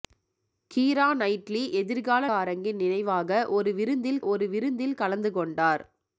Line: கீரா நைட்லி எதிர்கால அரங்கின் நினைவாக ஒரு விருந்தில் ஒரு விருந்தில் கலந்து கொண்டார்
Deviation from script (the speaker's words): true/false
false